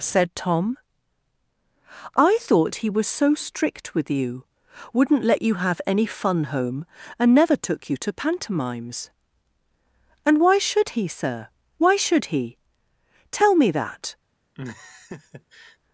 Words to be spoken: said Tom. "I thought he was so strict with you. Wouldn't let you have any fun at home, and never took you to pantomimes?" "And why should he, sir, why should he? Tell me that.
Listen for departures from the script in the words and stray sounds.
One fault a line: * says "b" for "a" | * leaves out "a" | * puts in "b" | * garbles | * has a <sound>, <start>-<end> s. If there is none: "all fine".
* leaves out "at"
* has a laugh, 14.5-15.8 s